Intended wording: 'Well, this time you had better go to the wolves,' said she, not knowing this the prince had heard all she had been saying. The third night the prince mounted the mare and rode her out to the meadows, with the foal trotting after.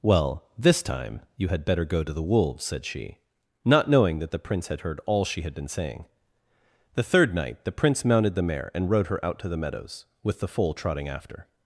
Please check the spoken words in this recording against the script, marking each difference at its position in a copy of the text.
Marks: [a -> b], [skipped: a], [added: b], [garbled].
'Well, this time you had better go to the wolves,' said she, not knowing [this -> that] the prince had heard all she had been saying. The third night the prince mounted the mare and rode her out to the meadows, with the foal trotting after.